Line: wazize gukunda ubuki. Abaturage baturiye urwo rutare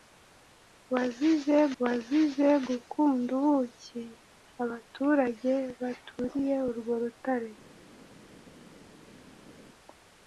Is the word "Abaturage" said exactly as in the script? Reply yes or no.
yes